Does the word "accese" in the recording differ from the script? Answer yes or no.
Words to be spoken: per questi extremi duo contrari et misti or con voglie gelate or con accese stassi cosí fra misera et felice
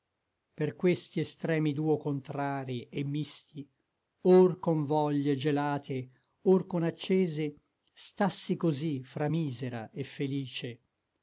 no